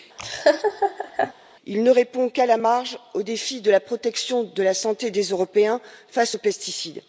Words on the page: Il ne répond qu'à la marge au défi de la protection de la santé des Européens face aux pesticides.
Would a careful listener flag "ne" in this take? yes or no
no